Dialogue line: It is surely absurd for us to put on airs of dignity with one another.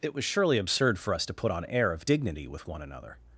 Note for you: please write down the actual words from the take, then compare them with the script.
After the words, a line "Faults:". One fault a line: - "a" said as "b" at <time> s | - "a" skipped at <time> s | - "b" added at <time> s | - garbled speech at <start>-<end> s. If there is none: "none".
It was surely absurd for us to put on air of dignity with one another.
Faults:
- "is" said as "was" at 0.1 s
- "airs" said as "air" at 1.6 s